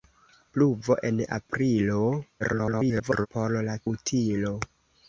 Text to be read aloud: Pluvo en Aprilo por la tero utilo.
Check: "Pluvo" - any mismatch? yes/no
no